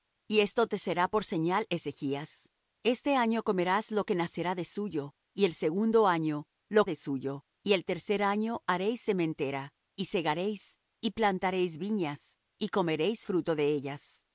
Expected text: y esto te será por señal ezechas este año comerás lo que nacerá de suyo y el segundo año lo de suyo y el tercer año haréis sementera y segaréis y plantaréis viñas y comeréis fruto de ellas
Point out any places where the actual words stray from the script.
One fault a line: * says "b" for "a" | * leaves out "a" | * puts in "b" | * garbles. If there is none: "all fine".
all fine